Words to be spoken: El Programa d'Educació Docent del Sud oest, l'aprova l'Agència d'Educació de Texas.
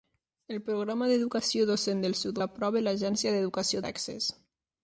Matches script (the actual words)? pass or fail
fail